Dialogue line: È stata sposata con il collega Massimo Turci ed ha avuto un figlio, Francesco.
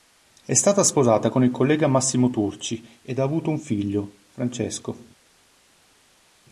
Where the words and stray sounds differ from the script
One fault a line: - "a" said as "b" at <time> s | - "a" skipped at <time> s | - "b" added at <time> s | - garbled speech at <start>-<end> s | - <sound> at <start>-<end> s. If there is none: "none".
none